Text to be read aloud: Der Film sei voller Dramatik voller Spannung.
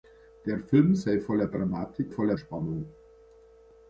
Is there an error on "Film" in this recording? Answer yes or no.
no